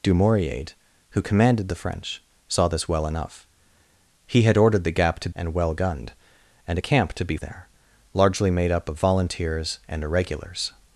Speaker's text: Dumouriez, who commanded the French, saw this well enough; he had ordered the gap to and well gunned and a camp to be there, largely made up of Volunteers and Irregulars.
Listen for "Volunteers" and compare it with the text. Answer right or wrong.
right